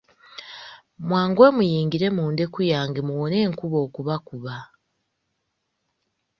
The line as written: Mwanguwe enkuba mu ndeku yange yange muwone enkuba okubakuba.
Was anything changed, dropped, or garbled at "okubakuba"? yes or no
no